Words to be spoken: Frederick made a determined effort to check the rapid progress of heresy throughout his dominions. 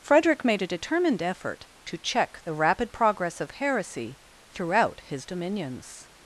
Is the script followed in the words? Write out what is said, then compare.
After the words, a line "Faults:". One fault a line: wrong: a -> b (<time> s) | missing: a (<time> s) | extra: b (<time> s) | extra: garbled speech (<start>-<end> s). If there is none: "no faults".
Frederick made a determined effort to check the rapid progress of heresy throughout his dominions.
Faults:
no faults